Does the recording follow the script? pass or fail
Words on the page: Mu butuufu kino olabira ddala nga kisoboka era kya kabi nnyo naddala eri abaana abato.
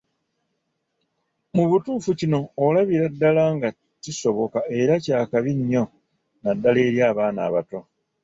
pass